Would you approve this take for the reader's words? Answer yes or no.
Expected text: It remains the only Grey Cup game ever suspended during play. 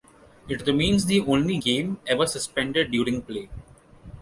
no